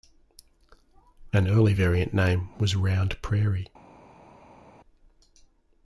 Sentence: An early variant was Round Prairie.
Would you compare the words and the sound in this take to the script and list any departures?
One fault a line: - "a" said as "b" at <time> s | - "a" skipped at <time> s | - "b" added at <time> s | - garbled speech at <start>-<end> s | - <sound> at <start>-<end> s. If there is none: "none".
- "name" added at 2.1 s